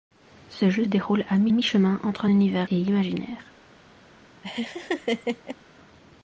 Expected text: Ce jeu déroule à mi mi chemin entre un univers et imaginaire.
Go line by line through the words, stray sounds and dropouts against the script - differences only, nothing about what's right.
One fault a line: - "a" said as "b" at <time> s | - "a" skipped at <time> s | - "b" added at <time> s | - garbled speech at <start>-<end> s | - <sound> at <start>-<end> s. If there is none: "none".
- laugh at 4.4-5.6 s